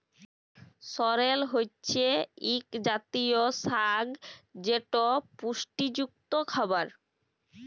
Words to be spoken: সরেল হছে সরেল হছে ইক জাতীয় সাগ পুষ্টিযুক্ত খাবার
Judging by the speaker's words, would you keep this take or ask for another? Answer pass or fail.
fail